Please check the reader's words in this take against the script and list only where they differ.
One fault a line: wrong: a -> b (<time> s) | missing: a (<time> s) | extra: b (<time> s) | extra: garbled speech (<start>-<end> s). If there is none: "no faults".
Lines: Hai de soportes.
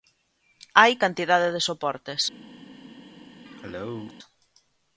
extra: cantidade (1.0 s)